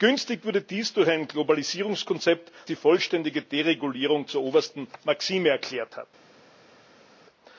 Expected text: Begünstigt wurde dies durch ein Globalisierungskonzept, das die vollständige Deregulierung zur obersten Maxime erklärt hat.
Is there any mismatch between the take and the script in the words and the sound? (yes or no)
yes